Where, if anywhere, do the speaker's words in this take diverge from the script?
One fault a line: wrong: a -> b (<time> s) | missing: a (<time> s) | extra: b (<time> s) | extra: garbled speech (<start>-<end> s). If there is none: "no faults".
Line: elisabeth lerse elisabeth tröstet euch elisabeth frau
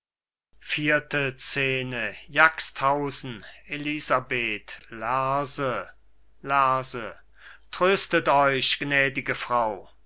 wrong: elisabeth -> lerse (6.4 s)
wrong: elisabeth -> gnädige (8.8 s)